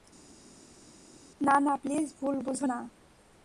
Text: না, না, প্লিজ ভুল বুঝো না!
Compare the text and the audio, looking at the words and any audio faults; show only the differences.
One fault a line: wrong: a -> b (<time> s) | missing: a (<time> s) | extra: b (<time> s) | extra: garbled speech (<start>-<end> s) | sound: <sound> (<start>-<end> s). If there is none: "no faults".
no faults